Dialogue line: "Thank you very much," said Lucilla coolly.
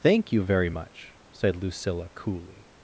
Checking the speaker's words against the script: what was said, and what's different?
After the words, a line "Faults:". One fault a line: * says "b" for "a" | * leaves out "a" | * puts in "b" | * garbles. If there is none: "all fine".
"Thank you very much," said Lucilla coolly.
Faults:
all fine